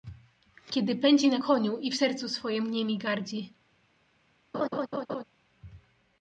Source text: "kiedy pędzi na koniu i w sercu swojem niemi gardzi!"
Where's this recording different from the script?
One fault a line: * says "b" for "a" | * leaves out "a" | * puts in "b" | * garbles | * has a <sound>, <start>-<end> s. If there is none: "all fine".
* has a laugh, 4.5-5.2 s